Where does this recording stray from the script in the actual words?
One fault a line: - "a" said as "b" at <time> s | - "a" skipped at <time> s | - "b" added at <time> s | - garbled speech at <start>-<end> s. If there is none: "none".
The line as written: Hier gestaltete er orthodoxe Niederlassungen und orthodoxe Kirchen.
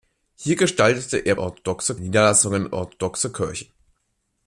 none